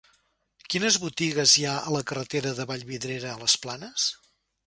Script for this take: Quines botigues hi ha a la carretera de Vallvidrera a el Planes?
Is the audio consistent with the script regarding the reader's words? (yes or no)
no